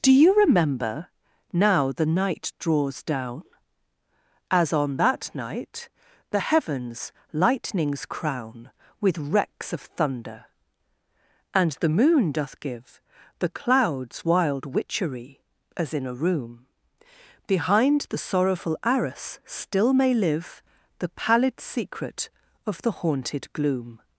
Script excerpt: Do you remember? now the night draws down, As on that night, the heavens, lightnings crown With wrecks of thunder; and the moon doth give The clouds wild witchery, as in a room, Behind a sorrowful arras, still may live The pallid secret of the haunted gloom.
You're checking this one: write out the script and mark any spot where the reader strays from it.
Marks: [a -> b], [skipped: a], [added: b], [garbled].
Do you remember? now the night draws down, As on that night, the heavens, lightnings crown With wrecks of thunder; and the moon doth give The clouds wild witchery, as in a room, Behind [a -> the] sorrowful arras, still may live The pallid secret of the haunted gloom.